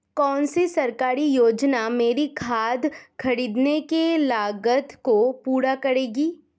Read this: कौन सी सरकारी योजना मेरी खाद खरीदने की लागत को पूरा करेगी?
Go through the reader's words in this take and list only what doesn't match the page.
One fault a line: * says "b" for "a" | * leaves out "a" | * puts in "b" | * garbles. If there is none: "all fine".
all fine